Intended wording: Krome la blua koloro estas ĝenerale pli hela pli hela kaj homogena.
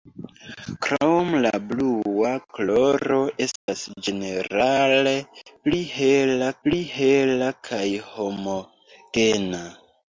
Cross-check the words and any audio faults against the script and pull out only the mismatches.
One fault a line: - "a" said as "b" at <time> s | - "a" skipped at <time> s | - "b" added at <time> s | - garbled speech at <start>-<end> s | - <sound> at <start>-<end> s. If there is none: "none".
- dropout at 3.6-3.7 s